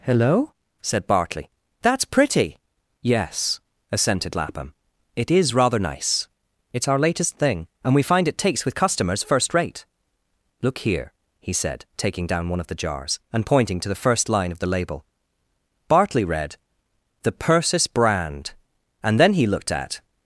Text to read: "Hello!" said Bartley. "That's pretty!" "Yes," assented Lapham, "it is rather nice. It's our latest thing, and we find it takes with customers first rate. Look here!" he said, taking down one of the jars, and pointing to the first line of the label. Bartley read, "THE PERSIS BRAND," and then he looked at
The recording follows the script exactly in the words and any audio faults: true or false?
true